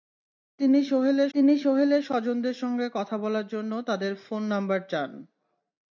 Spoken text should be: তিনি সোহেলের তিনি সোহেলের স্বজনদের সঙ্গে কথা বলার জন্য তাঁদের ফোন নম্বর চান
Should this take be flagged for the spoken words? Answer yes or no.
no